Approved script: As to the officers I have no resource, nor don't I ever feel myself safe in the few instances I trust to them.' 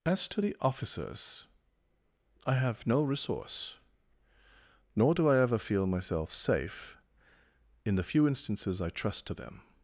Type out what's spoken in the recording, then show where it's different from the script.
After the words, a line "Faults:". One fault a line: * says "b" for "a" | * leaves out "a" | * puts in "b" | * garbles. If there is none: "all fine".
As to the officers I have no resource, nor do I ever feel myself safe in the few instances I trust to them.'
Faults:
* says "do" for "don't"